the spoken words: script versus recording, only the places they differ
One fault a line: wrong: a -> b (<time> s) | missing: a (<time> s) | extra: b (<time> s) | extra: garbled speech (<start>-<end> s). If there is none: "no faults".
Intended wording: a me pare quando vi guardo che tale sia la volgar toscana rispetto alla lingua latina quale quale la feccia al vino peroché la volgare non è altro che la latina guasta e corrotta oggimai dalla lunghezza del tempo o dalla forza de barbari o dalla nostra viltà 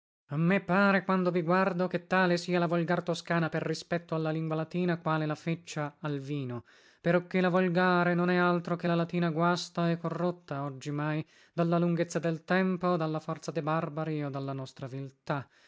extra: per (3.5 s)
missing: quale (5.3 s)